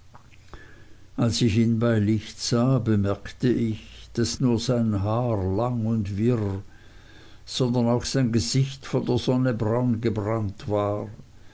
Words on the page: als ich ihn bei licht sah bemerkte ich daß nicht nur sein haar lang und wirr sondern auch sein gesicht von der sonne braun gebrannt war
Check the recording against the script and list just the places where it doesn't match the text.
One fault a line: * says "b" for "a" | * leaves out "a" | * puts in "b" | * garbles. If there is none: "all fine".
* leaves out "nicht"